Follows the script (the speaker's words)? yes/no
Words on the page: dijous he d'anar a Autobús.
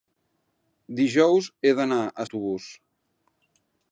yes